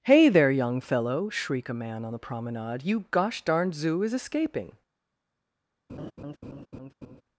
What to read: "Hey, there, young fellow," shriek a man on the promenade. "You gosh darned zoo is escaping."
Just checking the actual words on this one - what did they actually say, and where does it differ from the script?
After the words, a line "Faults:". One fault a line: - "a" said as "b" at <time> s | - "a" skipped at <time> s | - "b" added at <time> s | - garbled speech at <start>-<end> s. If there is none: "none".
"Hey, there, young fellow," shriek a man on the promenade. "You gosh darned zoo is escaping."
Faults:
none